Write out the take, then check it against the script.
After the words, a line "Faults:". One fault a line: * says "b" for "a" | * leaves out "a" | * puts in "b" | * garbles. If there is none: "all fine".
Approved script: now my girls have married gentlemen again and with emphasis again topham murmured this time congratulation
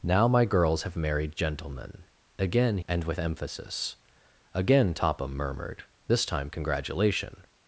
now my girls have married gentlemen again and with emphasis again topham murmured this time congratulation
Faults:
all fine